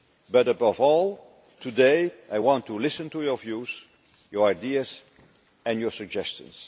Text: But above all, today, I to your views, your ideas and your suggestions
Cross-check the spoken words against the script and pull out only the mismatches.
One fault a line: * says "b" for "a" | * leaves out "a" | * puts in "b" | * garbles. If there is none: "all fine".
* puts in "want to listen"